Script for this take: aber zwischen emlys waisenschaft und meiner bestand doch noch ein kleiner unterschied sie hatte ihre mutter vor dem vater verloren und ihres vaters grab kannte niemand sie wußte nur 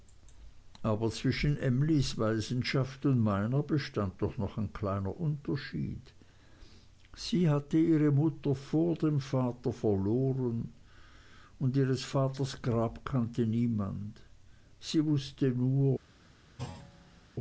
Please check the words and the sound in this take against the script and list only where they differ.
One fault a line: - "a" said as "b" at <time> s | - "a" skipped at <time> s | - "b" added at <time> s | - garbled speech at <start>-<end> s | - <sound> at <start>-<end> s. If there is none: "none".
- thud at 16.6-17.3 s